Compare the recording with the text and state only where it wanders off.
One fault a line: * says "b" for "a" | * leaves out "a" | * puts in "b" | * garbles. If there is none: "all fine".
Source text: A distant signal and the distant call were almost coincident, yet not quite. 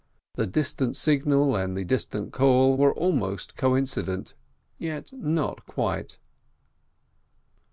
* says "The" for "A"